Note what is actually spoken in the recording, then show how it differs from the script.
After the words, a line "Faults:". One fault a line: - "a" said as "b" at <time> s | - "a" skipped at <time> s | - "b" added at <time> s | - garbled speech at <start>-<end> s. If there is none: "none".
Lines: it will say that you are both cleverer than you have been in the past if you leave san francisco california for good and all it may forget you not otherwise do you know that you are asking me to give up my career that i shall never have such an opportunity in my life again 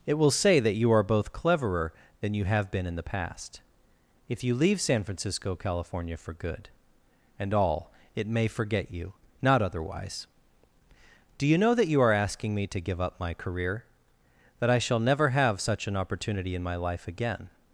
it will say that you are both cleverer than you have been in the past if you leave san francisco california for good and all it may forget you not otherwise do you know that you are asking me to give up my career that i shall never have such an opportunity in my life again
Faults:
none